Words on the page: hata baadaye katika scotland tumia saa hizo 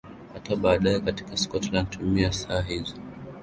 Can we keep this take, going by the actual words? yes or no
yes